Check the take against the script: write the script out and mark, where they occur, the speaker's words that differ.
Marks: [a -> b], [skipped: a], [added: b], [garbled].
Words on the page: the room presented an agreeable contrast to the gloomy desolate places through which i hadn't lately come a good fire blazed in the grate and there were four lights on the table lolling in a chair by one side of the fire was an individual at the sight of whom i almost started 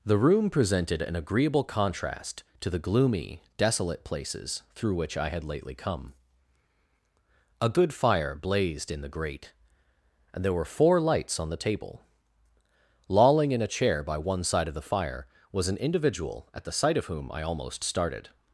the room presented an agreeable contrast to the gloomy desolate places through which i [hadn't -> had] lately come a good fire blazed in the grate and there were four lights on the table lolling in a chair by one side of the fire was an individual at the sight of whom i almost started